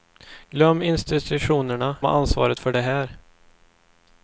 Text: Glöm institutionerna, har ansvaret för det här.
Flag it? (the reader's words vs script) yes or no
no